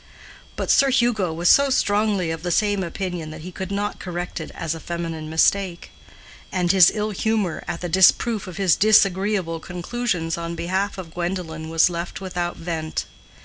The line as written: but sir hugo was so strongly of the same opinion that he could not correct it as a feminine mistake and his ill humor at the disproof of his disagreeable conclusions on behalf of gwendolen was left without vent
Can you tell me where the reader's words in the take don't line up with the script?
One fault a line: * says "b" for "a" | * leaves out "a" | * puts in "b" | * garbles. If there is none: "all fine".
all fine